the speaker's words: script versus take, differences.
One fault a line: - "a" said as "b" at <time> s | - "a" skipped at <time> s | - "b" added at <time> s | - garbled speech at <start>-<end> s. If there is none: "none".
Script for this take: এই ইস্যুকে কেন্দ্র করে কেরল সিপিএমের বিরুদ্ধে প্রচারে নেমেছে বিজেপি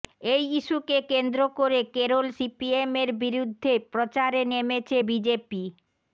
none